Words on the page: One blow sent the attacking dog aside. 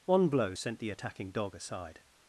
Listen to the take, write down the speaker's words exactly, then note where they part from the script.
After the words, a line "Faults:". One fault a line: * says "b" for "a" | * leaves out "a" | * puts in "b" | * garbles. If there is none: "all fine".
One blow sent the attacking dog aside.
Faults:
all fine